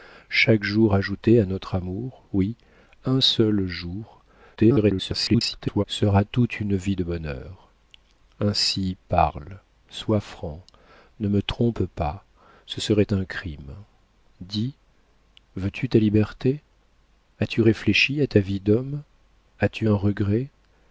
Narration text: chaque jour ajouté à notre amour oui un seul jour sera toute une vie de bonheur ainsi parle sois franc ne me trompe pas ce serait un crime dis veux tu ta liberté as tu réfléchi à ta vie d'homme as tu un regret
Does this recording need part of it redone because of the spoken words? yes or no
yes